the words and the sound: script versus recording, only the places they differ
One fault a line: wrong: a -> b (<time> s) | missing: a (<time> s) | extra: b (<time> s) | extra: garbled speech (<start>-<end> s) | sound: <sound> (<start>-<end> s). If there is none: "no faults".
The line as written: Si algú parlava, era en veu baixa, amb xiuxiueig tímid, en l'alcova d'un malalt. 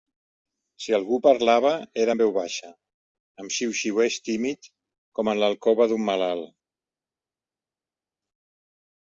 extra: com (5.2 s)